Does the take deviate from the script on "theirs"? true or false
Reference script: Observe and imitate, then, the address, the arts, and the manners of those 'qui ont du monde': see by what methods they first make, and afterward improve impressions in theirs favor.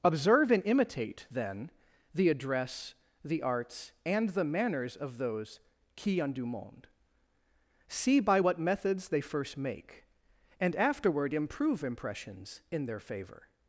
true